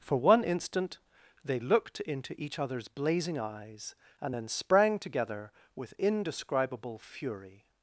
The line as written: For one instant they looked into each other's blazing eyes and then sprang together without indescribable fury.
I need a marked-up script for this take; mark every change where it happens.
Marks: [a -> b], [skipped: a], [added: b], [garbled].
For one instant they looked into each other's blazing eyes and then sprang together [without -> with] indescribable fury.